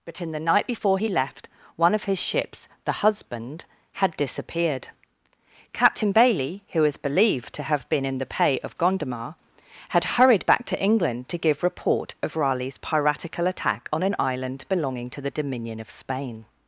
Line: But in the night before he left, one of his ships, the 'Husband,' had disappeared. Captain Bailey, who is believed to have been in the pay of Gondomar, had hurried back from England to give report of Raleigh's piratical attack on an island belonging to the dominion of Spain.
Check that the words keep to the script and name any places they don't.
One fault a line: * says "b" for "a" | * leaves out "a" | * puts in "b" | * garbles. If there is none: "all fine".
* says "to" for "from"